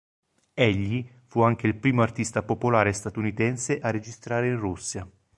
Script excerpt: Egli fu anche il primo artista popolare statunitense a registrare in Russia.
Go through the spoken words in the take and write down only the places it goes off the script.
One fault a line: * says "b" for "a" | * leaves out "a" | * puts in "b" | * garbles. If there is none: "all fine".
all fine